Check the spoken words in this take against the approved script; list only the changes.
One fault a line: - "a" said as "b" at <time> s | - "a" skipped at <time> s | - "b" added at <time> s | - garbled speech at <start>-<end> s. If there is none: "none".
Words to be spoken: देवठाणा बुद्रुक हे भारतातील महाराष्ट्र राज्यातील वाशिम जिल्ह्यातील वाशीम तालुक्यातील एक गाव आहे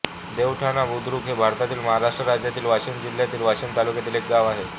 none